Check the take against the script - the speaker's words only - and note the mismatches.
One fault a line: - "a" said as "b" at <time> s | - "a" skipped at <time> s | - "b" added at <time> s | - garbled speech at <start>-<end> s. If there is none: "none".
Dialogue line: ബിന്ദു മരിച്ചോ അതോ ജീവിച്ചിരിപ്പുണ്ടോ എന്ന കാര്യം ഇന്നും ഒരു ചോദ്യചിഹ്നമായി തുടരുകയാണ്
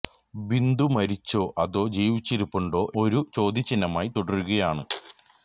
- "എന്ന കാര്യം ഇന്നും" skipped at 2.8 s